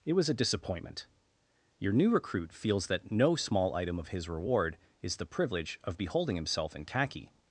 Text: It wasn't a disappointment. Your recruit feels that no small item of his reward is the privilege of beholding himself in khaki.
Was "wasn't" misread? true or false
true